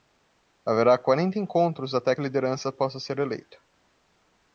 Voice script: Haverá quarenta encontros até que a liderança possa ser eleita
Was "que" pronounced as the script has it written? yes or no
no